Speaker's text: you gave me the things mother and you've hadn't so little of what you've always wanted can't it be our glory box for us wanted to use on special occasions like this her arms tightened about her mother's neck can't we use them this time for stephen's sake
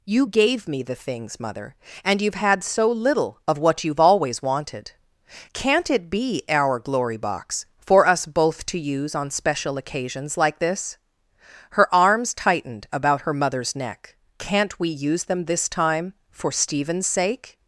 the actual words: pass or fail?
fail